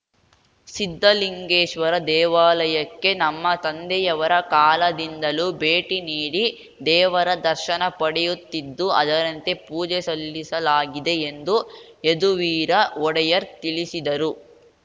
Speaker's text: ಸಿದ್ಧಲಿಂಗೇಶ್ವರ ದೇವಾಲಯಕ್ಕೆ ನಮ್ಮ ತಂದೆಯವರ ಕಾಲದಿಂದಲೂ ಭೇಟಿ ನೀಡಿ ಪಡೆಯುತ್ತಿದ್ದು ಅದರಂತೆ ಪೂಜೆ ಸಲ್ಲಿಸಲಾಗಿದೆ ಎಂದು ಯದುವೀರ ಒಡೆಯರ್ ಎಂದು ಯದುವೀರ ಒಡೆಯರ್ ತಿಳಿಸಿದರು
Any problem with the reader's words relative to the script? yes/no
yes